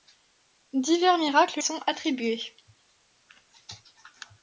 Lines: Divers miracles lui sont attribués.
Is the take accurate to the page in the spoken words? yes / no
no